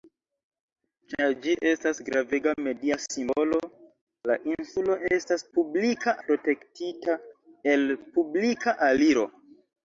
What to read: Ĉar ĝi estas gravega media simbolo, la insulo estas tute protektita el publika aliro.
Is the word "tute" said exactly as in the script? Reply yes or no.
no